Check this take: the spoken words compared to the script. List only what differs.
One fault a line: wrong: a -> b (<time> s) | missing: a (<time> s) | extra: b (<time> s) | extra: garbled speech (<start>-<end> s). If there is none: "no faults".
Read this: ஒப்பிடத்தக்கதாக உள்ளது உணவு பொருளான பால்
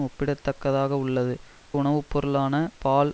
no faults